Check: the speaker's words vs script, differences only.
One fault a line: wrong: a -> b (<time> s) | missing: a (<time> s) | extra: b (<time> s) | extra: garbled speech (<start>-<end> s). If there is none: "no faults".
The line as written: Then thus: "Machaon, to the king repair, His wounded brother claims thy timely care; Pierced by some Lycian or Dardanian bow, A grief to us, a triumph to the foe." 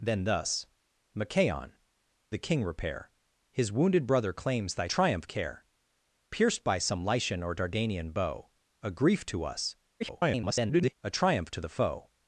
missing: to (1.7 s)
wrong: timely -> triumph (4.9 s)
extra: garbled speech (10.0-11.0 s)